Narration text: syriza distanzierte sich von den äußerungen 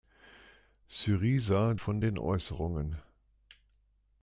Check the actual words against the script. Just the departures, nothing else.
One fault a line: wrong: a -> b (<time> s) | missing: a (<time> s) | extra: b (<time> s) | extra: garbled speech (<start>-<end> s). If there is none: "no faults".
missing: distanzierte sich (1.8 s)